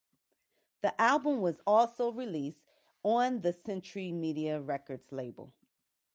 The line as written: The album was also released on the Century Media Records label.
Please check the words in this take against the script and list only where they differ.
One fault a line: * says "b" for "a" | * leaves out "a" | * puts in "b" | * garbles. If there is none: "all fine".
all fine